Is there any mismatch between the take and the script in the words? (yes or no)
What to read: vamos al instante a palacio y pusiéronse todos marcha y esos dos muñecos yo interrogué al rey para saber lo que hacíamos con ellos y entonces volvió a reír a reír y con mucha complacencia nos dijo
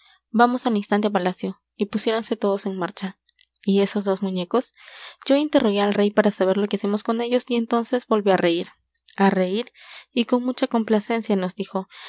yes